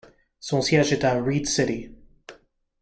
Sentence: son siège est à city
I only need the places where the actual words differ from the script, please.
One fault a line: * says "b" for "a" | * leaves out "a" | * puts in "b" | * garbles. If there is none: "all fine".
* puts in "reed"